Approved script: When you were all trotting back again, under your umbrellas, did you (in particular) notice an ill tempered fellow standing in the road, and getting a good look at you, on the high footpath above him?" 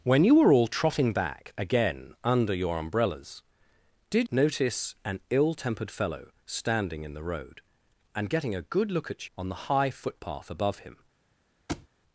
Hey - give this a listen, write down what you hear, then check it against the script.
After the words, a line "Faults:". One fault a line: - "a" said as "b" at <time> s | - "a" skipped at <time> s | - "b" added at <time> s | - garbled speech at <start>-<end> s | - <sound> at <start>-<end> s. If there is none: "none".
When you were all trotting back again, under your umbrellas, did) notice an ill tempered fellow standing in the road, and getting a good look at on the high footpath above him?"
Faults:
- "you in particular" skipped at 4.3 s
- "you" skipped at 9.3 s
- thud at 11.7-11.9 s